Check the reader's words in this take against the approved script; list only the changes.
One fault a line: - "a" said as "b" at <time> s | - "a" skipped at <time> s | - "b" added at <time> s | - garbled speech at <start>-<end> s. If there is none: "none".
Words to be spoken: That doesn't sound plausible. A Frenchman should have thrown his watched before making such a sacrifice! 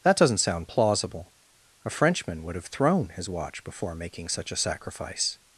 - "should" said as "would" at 2.4 s
- "watched" said as "watch" at 3.3 s